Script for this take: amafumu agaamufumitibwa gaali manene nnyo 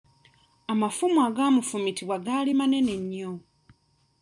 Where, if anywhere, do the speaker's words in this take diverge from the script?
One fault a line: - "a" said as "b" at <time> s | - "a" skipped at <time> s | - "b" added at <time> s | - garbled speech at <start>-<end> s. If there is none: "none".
none